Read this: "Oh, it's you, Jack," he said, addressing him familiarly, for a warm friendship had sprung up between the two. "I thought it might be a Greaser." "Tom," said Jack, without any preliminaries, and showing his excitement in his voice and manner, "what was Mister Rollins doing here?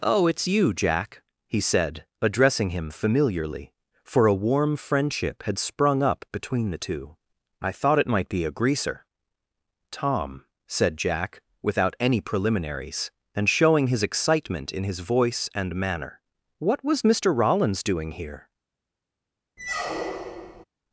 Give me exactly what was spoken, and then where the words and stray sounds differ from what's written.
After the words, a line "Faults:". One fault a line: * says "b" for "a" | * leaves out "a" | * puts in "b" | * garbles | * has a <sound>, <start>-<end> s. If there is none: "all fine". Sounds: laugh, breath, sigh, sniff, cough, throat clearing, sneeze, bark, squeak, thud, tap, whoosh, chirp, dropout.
"Oh, it's you, Jack," he said, addressing him familiarly, for a warm friendship had sprung up between the two. "I thought it might be a Greaser." "Tom," said Jack, without any preliminaries, and showing his excitement in his voice and manner, "what was Mister Rollins doing here?
Faults:
* has a squeak, 19.6-20.6 s